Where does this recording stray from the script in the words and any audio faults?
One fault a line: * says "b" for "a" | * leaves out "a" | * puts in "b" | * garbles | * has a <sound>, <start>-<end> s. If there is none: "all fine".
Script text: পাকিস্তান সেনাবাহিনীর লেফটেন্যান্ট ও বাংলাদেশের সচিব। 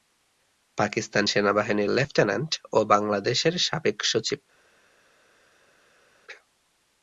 * puts in "সাবেক"